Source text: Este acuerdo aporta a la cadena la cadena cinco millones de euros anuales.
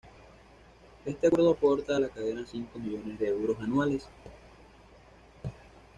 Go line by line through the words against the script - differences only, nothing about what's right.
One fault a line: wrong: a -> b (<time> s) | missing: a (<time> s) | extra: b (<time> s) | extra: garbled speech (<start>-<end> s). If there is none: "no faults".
missing: la cadena (2.4 s)